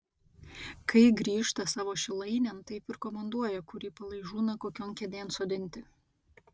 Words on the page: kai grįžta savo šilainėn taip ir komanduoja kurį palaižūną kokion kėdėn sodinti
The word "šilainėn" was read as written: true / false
true